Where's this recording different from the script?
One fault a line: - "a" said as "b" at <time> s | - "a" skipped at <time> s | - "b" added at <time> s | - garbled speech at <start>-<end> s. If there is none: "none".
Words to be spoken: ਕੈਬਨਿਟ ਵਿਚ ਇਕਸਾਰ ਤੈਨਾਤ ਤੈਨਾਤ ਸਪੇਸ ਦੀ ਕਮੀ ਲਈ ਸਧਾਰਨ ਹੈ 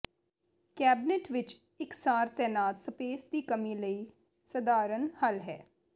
- "ਤੈਨਾਤ" skipped at 2.8 s
- "ਹੱਲ" added at 5.2 s